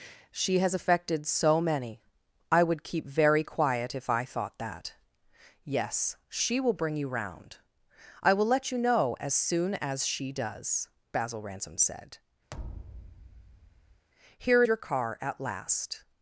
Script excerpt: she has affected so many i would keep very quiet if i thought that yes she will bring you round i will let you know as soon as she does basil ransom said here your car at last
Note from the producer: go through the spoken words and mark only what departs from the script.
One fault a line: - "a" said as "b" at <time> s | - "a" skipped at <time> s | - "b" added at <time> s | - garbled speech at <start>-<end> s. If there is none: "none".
none